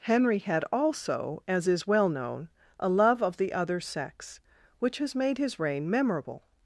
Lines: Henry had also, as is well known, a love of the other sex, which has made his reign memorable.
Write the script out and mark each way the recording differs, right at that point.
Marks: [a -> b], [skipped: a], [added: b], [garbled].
Henry had also, as is well known, a love of the other sex, which has made his reign memorable.